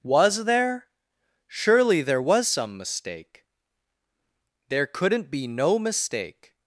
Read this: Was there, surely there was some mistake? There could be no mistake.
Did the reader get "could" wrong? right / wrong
wrong